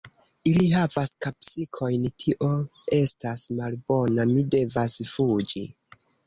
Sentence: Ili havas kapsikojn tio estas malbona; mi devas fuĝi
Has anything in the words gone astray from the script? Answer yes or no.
no